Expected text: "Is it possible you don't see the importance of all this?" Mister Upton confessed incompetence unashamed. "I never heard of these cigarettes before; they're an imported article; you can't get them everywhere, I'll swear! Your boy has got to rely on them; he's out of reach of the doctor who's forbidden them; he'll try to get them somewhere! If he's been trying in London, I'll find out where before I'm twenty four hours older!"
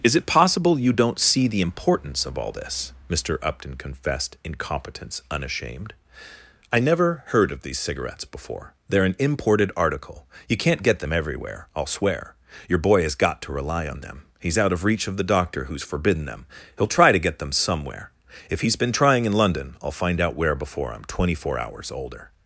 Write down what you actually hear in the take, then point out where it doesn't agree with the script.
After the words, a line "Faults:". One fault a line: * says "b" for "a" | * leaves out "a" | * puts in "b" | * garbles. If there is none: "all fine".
"Is it possible you don't see the importance of all this?" Mister Upton confessed incompetence unashamed. "I never heard of these cigarettes before; they're an imported article; you can't get them everywhere, I'll swear! Your boy has got to rely on them; he's out of reach of the doctor who's forbidden them; he'll try to get them somewhere! If he's been trying in London, I'll find out where before I'm twenty four hours older!"
Faults:
all fine